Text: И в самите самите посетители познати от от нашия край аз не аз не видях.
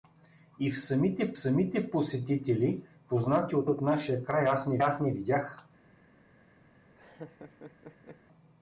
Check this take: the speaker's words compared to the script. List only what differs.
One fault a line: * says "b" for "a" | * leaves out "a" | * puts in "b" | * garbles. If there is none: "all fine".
all fine